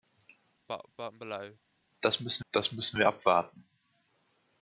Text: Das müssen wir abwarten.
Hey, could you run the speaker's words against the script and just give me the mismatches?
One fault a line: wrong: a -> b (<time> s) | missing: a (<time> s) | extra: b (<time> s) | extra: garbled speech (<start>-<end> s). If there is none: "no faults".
extra: das müssen (2.5 s)